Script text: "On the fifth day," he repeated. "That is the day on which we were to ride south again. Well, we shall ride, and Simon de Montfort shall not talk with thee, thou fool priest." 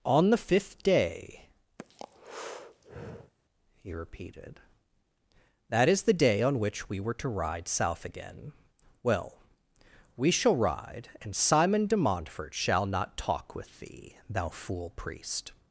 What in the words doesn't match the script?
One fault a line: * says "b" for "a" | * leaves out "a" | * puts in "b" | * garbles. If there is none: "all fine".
all fine